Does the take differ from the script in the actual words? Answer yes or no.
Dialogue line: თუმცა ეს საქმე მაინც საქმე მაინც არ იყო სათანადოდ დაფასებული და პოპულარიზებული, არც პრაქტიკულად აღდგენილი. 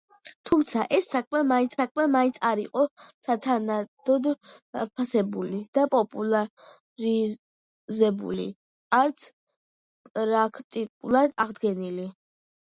no